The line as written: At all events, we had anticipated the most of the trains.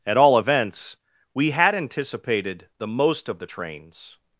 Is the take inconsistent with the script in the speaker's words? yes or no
no